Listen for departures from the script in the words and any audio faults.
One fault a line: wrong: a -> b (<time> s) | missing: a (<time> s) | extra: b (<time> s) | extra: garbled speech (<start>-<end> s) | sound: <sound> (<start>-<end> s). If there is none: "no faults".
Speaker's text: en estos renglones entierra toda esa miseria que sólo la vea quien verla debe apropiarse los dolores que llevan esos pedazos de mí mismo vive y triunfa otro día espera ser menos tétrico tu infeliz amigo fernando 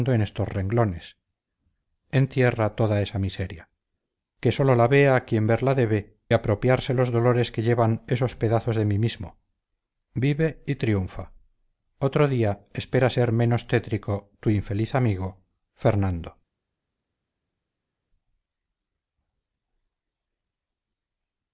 no faults